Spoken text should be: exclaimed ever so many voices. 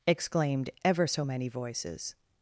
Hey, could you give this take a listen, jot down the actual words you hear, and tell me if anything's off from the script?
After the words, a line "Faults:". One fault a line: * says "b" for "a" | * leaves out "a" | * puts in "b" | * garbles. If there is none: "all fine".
exclaimed ever so many voices.
Faults:
all fine